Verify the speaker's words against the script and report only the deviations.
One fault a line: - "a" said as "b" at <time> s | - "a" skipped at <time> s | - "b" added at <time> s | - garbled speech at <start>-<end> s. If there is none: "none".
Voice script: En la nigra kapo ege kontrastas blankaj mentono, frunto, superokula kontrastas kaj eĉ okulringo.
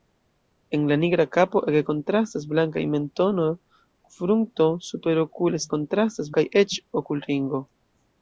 none